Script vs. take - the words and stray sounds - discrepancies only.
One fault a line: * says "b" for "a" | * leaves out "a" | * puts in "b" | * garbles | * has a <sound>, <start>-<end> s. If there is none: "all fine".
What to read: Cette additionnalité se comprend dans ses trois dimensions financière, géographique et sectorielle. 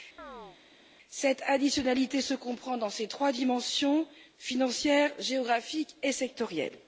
* has a chirp, 0.2-0.6 s